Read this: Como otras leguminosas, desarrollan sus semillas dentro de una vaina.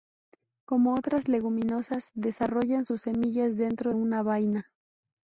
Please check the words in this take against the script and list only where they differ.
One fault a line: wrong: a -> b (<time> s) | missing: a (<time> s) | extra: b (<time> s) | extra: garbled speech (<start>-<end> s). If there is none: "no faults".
missing: de (3.9 s)